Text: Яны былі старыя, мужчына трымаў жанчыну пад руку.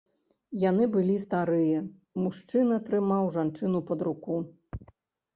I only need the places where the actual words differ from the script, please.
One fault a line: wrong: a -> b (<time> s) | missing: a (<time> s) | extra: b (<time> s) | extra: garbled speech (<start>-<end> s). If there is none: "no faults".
no faults